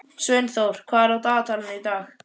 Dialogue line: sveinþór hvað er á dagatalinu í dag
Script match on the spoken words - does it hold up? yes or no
yes